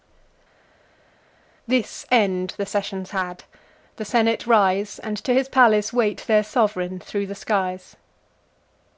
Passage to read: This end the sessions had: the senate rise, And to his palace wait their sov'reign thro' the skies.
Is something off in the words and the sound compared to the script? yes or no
no